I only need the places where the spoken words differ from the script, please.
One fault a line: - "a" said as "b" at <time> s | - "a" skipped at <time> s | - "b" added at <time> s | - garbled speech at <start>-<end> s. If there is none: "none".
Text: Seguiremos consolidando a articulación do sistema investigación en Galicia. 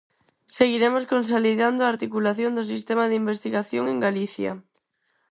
- "de" added at 3.1 s